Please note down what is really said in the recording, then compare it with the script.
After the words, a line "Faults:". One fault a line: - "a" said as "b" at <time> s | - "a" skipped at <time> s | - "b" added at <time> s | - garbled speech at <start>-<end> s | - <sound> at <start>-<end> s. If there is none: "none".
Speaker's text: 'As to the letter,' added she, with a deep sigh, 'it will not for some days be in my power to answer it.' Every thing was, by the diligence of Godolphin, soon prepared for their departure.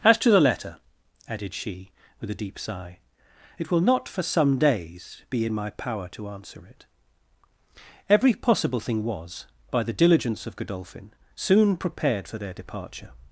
'As to the letter,' added she, with a deep sigh, 'it will not for some days be in my power to answer it.' Every possible thing was, by the diligence of Godolphin, soon prepared for their departure.
Faults:
- "possible" added at 8.3 s